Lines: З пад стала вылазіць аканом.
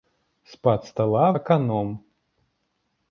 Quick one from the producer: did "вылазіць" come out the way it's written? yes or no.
no